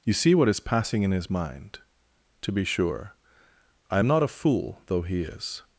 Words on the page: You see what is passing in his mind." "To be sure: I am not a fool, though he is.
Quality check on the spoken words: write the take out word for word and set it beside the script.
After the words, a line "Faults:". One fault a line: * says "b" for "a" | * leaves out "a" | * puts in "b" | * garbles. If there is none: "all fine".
You see what is passing in his mind." "To be sure: I am not a fool, though he is.
Faults:
all fine